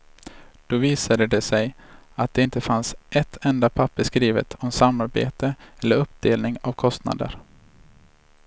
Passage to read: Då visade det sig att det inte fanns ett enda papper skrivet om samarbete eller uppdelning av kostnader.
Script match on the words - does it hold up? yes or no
yes